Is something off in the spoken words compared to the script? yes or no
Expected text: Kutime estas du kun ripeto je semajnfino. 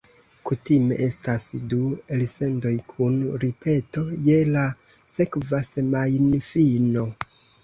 yes